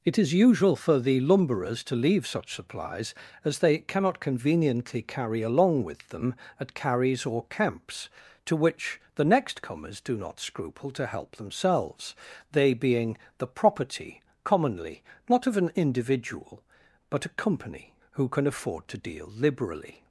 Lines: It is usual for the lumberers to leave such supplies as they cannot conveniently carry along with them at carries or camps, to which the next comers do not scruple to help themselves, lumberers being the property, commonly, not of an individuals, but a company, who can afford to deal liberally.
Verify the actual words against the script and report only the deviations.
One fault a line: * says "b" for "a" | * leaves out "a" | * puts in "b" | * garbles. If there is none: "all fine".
* says "they" for "lumberers"
* says "individual" for "individuals"